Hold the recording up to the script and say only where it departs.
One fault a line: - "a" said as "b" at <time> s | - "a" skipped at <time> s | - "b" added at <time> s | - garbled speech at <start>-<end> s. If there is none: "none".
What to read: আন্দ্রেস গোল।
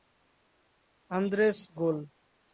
none